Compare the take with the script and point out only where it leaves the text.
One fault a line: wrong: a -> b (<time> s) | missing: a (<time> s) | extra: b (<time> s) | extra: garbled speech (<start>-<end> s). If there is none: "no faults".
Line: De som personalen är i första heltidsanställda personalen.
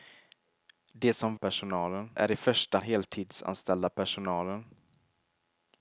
no faults